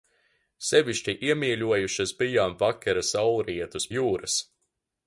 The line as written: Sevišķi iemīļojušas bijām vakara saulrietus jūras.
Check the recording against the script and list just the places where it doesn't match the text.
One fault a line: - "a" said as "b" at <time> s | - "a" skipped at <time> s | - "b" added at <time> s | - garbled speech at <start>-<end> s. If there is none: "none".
none